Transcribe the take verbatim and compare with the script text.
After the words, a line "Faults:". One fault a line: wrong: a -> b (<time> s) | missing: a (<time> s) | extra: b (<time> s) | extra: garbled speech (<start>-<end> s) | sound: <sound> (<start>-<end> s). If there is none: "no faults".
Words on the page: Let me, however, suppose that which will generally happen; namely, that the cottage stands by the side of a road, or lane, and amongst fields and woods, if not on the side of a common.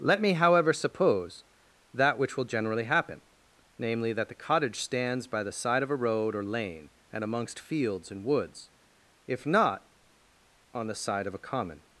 Let me, however, suppose that which will generally happen; namely, that the cottage stands by the side of a road, or lane, and amongst fields and woods, if not on the side of a common.
Faults:
no faults